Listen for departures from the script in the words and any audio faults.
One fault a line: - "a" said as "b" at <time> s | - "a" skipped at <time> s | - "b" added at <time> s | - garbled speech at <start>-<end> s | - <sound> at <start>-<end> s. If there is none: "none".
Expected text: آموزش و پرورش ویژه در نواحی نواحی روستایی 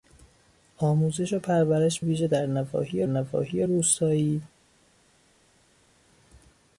none